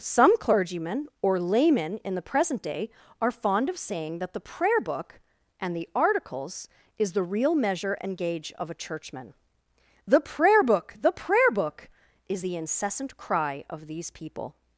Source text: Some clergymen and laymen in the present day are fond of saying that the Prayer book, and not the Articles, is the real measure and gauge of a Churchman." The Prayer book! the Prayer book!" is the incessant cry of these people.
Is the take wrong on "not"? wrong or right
wrong